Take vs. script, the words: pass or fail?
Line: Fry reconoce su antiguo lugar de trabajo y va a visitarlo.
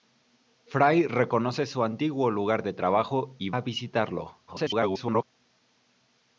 fail